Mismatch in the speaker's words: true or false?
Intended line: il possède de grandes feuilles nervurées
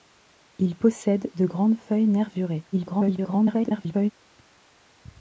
true